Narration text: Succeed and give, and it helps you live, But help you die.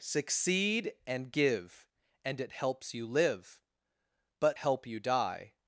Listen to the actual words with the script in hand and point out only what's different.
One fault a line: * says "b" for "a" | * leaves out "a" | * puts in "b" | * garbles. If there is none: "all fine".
all fine